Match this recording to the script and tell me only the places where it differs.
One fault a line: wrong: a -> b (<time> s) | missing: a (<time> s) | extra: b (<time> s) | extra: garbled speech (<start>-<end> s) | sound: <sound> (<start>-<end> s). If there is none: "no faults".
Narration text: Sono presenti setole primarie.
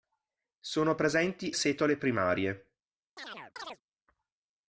sound: chirp (3.2-3.8 s)